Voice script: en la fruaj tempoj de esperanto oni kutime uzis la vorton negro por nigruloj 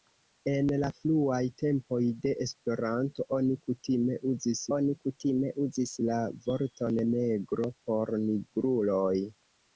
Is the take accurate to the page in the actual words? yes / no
no